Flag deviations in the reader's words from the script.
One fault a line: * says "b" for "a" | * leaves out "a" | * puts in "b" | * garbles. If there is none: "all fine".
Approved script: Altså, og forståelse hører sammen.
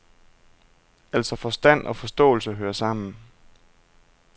* puts in "forstand"